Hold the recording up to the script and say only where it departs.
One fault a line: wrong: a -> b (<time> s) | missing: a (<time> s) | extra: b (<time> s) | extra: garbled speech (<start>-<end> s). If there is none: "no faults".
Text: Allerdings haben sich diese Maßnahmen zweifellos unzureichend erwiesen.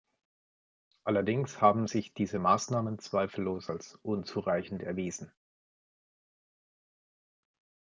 extra: als (3.7 s)